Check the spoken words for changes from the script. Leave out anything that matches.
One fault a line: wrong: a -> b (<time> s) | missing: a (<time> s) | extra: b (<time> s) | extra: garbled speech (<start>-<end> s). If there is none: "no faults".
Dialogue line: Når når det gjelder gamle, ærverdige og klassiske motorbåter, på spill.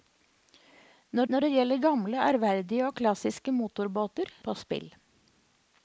no faults